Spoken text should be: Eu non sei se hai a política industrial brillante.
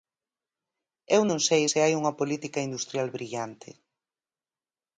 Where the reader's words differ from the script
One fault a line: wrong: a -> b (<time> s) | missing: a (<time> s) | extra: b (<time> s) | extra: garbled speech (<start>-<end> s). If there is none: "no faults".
wrong: a -> unha (2.0 s)